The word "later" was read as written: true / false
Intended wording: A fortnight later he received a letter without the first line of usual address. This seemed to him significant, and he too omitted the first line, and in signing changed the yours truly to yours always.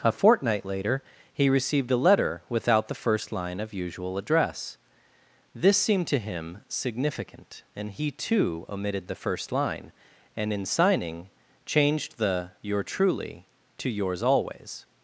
true